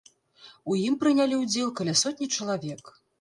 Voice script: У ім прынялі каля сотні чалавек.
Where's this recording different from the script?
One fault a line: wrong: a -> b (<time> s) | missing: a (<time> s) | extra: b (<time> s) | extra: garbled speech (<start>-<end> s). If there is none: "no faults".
extra: ўдзел (1.4 s)